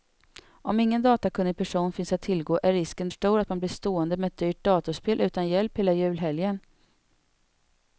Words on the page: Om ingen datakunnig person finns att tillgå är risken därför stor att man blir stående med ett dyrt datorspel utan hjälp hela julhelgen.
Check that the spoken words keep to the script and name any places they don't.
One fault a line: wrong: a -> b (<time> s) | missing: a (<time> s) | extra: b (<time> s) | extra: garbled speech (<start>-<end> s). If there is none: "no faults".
missing: därför (3.1 s)